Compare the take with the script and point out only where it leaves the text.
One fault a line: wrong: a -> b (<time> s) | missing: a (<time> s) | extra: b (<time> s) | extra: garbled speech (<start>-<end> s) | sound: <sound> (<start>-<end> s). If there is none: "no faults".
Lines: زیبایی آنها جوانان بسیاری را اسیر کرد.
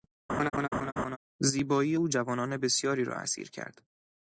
sound: laugh (0.3-1.2 s)
wrong: آنها -> او (1.9 s)